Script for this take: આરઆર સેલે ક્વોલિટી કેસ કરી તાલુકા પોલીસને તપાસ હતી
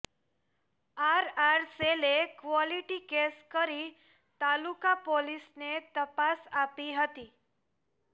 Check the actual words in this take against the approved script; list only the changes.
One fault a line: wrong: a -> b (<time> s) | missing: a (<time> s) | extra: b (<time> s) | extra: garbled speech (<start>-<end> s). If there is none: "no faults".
extra: આપી (6.6 s)